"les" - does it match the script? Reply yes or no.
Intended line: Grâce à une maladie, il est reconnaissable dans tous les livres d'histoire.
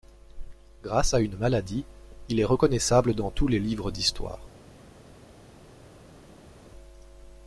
yes